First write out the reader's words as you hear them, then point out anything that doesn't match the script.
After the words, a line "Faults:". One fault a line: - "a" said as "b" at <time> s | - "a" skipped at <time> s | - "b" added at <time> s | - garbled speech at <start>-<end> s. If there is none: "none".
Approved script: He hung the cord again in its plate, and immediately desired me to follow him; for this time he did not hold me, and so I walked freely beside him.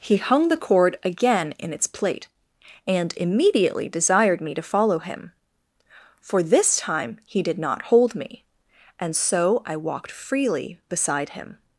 He hung the cord again in its plate, and immediately desired me to follow him; for this time he did not hold me, and so I walked freely beside him.
Faults:
none